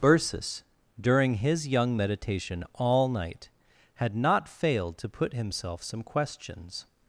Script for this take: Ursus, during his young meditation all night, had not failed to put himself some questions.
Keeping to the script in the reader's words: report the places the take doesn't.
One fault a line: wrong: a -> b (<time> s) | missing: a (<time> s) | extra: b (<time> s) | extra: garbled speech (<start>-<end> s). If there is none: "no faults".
no faults